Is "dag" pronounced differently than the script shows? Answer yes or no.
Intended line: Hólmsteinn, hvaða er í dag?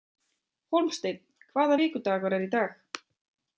no